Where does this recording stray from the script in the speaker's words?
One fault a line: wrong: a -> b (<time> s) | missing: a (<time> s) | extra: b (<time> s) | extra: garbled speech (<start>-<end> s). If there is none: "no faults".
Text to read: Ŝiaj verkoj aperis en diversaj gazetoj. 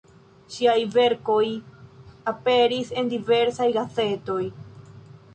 no faults